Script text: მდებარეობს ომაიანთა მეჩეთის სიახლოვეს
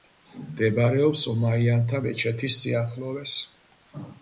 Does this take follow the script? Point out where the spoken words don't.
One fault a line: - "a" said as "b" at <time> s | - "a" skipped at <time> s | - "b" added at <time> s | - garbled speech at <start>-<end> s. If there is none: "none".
none